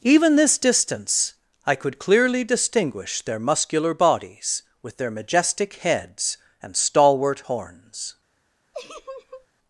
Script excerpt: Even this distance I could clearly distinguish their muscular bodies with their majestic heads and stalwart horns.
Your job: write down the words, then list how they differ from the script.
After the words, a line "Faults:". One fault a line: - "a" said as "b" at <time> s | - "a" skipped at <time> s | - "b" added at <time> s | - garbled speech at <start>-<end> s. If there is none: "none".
Even this distance I could clearly distinguish their muscular bodies with their majestic heads and stalwart horns.
Faults:
none